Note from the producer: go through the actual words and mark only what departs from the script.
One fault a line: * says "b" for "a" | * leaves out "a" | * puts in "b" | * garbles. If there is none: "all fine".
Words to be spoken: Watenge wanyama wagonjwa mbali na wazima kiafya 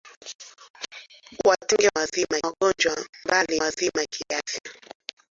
* says "wazima" for "wanyama"
* leaves out "na"